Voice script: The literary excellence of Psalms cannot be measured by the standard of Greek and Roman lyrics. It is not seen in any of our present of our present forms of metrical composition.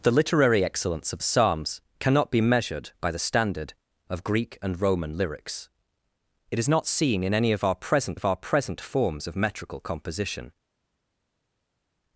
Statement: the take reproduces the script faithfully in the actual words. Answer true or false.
true